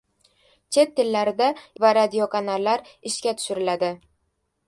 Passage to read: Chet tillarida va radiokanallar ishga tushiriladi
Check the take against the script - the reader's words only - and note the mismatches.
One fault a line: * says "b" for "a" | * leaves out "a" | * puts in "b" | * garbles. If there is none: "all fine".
all fine